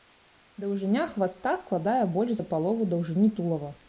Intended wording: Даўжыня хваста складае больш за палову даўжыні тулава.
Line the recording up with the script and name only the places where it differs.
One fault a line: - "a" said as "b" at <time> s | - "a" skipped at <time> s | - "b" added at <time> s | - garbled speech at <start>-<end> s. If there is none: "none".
none